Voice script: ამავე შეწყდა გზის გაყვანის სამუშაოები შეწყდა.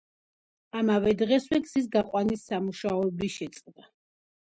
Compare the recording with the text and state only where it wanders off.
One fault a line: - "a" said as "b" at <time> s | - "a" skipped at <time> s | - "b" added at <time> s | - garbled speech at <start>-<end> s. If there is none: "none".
- "შეწყდა" said as "დღესვე" at 1.2 s